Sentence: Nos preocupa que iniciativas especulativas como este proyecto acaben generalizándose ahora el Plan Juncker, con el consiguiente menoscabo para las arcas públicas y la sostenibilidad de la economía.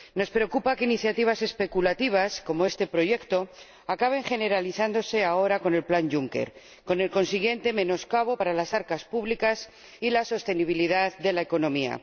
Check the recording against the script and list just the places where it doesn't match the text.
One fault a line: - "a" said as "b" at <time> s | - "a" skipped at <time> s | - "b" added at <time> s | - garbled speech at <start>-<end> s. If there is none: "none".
- "con" added at 5.6 s